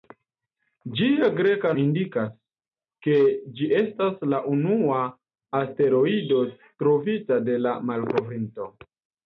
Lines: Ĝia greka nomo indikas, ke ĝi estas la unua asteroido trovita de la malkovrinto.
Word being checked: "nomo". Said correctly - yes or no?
no